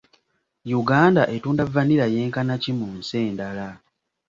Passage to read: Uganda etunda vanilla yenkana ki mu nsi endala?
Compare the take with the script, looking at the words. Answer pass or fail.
pass